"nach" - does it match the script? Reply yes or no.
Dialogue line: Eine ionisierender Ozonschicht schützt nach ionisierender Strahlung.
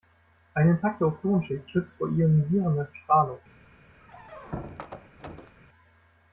no